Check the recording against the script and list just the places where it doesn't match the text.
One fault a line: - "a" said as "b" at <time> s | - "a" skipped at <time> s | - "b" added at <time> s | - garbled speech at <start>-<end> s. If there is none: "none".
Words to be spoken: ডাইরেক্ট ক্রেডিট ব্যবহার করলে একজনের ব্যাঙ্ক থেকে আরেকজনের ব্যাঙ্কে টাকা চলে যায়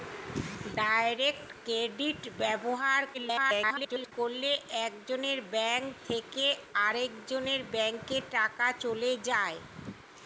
- garbled speech at 3.1-4.1 s